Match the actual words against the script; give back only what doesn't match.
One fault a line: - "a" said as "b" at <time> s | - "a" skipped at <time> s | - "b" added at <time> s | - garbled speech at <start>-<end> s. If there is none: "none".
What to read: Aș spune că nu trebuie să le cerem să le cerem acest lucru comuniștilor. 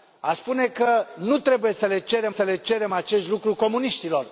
none